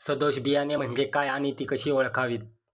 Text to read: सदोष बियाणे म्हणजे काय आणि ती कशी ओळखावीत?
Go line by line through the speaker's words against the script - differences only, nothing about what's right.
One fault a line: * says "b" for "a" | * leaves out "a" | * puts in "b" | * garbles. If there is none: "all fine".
all fine